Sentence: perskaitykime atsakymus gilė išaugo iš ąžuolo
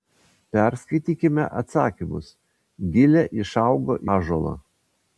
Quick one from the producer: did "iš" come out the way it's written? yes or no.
no